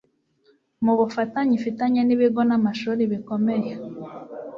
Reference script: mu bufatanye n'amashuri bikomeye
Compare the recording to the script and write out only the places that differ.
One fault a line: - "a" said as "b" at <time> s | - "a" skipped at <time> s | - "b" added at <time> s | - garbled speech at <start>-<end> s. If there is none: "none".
- "ifitanye n'ibigo" added at 1.6 s